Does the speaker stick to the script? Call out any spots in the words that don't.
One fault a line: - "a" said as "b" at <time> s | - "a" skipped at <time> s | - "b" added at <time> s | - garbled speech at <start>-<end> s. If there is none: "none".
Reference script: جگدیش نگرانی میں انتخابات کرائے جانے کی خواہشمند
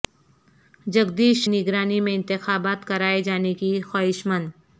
none